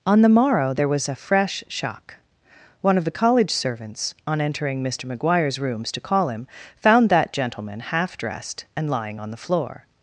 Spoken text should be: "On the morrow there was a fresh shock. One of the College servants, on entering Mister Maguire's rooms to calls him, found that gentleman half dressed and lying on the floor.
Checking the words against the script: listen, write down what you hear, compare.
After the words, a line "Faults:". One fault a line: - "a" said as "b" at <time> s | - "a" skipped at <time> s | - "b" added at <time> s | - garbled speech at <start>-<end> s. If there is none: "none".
"On the morrow there was a fresh shock. One of the College servants, on entering Mister Maguire's rooms to call him, found that gentleman half dressed and lying on the floor.
Faults:
- "calls" said as "call" at 6.0 s